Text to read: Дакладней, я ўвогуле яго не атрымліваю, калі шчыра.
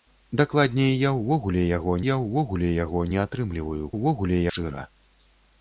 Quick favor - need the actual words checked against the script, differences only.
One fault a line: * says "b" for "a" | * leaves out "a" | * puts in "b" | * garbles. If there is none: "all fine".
* puts in "я ўвогуле яго"
* says "ўвогуле" for "калі"